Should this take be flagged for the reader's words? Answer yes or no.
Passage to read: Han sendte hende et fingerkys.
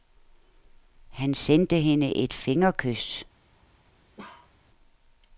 no